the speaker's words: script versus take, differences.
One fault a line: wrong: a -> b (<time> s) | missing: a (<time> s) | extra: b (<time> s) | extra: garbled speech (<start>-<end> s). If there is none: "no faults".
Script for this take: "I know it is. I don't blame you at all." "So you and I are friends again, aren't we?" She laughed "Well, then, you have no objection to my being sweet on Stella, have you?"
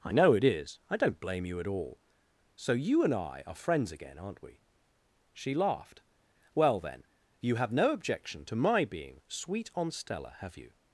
no faults